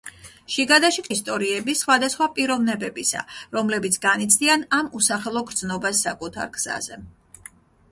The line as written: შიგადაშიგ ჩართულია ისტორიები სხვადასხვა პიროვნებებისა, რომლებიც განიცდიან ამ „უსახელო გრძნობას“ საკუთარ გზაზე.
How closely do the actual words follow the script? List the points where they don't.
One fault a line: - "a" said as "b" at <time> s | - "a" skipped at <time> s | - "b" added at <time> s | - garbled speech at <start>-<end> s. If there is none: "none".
- "ჩართულია" skipped at 1.1 s